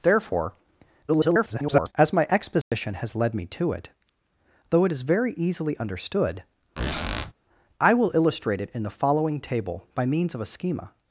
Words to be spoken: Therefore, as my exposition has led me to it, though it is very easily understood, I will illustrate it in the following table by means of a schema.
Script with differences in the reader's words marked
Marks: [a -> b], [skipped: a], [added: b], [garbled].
Therefore, [garbled] as my exposition has led me to it, though it is very easily understood, I will illustrate it in the following table by means of a schema.